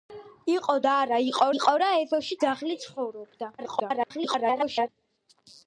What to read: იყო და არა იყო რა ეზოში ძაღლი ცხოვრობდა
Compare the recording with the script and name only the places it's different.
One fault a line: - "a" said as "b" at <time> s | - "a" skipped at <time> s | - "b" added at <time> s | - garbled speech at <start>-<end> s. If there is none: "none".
- "იყო" added at 1.5 s
- garbled speech at 3.6-4.9 s